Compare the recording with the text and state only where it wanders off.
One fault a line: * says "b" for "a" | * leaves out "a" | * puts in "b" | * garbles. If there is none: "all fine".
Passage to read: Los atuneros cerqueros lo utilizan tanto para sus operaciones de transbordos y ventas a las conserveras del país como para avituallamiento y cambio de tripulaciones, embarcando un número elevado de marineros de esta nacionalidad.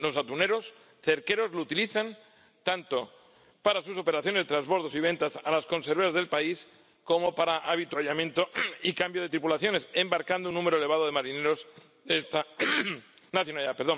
all fine